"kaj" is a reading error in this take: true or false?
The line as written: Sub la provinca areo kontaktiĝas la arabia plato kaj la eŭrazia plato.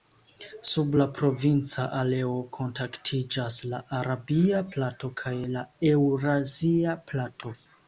false